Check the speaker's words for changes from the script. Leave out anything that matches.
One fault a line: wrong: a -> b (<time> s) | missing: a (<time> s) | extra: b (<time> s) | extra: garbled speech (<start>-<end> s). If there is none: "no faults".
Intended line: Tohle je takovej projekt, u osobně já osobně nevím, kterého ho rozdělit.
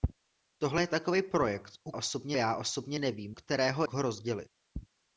no faults